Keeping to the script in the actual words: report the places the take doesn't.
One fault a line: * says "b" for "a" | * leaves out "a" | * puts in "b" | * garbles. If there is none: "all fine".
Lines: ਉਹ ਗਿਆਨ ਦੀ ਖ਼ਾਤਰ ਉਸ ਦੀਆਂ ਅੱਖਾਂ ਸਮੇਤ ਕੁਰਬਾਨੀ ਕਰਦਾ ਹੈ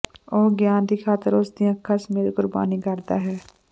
all fine